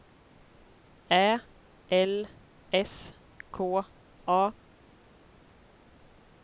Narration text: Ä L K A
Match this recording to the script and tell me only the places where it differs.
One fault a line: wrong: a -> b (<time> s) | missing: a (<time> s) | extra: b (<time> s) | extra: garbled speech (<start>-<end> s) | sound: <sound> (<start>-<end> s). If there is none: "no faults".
extra: S (2.8 s)